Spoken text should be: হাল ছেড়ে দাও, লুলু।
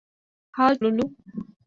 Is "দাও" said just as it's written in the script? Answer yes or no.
no